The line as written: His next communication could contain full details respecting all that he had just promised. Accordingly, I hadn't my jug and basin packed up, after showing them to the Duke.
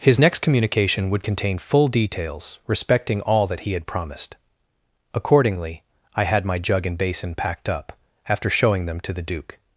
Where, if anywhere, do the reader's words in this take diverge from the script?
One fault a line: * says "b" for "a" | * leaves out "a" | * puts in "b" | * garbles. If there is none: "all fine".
* says "would" for "could"
* leaves out "just"
* says "had" for "hadn't"